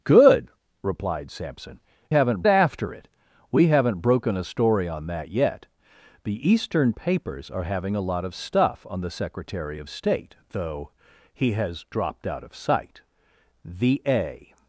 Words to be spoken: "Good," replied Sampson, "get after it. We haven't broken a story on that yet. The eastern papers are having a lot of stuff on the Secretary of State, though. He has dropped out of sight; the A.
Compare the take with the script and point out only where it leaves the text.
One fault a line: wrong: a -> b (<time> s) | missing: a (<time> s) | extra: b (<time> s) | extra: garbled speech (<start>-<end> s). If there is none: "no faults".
wrong: get -> haven't (2.1 s)